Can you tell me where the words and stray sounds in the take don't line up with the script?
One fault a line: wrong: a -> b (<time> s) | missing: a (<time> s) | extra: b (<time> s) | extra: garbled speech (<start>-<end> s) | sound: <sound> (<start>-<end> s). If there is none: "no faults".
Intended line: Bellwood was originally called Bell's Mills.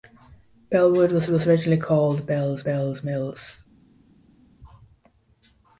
extra: was (1.3 s)
extra: Bell's (2.6 s)